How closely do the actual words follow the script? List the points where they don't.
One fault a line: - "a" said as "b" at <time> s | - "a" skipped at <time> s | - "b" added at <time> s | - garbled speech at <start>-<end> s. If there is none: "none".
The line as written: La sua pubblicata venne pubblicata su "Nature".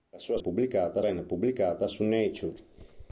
none